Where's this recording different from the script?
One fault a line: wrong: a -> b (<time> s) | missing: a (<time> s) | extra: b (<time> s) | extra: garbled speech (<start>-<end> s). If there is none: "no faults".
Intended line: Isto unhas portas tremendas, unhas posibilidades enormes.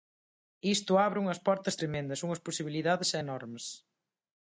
extra: abre (1.1 s)